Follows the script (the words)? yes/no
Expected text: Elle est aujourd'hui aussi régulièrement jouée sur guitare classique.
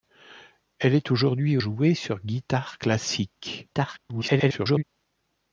no